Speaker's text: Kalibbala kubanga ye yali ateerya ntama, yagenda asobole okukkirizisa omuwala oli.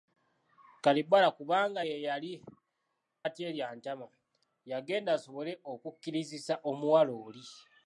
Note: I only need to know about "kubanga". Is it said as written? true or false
true